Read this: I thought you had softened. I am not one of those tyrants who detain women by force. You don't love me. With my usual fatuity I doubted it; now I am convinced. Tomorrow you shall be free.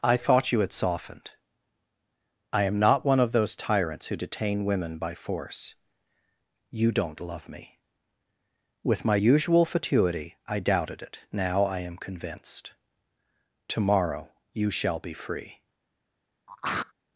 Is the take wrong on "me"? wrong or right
right